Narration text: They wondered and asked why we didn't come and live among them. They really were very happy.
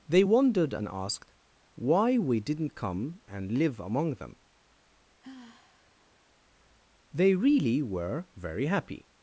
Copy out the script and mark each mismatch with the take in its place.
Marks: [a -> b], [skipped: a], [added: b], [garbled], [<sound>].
They wondered and asked why we didn't come and live among them. [sigh] They really were very happy.